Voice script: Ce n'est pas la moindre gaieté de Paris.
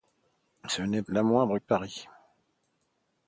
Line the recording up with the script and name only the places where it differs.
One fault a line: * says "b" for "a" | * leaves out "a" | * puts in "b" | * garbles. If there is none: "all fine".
* leaves out "pas"
* leaves out "gaieté"